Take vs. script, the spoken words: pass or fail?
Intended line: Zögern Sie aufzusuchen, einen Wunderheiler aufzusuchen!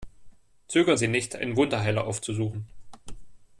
fail